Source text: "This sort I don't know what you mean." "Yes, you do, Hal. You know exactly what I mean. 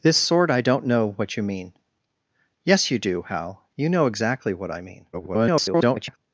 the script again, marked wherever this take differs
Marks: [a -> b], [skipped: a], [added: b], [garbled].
"This sort I don't know what you mean." "Yes, you do, Hal. You know exactly what I mean. [garbled]